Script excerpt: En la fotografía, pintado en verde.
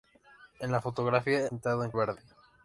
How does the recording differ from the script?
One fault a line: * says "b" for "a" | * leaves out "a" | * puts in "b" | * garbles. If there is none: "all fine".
all fine